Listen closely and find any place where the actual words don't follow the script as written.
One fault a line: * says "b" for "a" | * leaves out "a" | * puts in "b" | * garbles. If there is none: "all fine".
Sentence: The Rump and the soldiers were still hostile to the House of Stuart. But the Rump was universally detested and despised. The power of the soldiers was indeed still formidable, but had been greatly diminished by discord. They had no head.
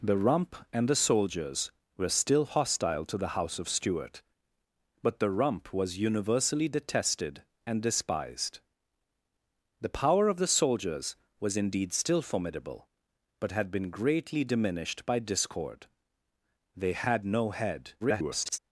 * garbles